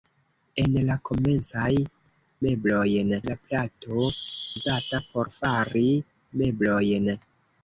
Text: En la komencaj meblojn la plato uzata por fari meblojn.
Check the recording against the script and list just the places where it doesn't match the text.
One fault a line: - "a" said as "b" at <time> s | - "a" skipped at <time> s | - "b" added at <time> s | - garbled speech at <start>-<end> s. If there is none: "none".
none